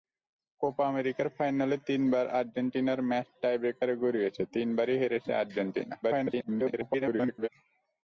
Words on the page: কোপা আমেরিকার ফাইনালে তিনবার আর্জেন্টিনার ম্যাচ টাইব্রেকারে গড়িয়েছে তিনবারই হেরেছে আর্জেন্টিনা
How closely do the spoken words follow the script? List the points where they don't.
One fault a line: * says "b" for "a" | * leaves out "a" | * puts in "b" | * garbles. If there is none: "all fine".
* garbles